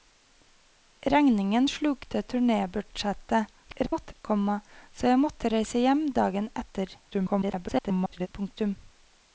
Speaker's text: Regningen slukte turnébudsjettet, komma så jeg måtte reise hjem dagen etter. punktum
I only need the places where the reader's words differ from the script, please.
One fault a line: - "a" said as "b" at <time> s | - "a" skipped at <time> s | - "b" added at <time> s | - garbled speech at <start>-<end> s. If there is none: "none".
- garbled speech at 3.6-4.1 s
- garbled speech at 7.1-8.3 s